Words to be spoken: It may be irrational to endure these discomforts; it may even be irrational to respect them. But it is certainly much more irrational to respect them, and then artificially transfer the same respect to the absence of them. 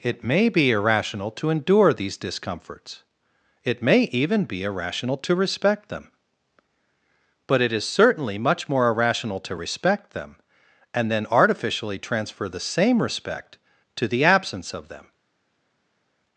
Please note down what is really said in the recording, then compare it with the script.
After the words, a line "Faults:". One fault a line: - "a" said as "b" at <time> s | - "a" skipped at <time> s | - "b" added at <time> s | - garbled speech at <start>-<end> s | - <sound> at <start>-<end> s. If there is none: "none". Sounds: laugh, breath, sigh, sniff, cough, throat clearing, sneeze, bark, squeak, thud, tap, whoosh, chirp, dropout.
It may be irrational to endure these discomforts; it may even be irrational to respect them. But it is certainly much more irrational to respect them, and then artificially transfer the same respect to the absence of them.
Faults:
none